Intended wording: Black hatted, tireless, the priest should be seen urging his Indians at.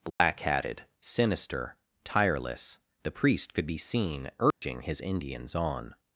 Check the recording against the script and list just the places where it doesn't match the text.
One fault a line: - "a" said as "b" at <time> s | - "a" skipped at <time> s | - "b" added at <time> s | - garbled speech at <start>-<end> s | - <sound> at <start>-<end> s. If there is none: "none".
- dropout at 0.1-0.2 s
- "sinister" added at 1.0 s
- "should" said as "could" at 3.5 s
- dropout at 4.5-4.6 s
- "at" said as "on" at 5.5 s